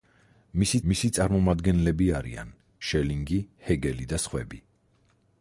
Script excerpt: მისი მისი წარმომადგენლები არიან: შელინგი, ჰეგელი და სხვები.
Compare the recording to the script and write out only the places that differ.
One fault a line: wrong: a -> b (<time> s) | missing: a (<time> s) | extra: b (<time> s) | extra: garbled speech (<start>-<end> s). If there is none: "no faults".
no faults